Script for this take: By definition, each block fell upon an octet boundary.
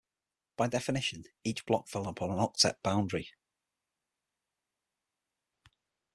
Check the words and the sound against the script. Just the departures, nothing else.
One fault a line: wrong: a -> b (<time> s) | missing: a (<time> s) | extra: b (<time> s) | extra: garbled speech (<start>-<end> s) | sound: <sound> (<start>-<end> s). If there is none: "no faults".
no faults